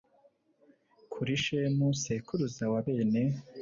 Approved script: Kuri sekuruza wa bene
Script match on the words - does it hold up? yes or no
no